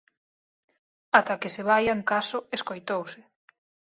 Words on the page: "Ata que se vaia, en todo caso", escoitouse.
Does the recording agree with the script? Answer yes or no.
no